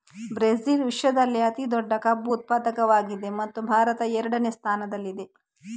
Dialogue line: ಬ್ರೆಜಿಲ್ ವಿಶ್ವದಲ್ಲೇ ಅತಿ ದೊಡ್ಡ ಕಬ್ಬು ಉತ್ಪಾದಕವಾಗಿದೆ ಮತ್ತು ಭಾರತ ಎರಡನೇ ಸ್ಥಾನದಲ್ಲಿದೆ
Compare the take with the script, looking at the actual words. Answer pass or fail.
pass